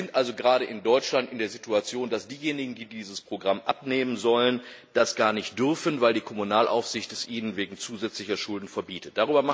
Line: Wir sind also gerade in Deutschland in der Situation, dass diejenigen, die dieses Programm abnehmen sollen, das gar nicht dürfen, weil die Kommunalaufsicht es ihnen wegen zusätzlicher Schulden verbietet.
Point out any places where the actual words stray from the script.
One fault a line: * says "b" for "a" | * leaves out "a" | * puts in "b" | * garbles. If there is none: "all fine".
all fine